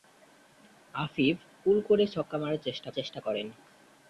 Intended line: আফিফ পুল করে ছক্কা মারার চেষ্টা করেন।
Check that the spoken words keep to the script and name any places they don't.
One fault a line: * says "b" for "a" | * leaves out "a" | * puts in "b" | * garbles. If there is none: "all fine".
* puts in "চেষ্টা"